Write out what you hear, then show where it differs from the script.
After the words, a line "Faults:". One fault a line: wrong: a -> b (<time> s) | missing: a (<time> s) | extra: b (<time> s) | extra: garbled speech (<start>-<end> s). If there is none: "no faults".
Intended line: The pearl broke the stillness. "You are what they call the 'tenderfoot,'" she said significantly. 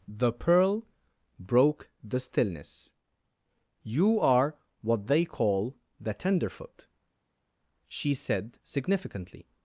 The pearl broke the stillness. "You are what they call the 'tenderfoot,'" she said significantly.
Faults:
no faults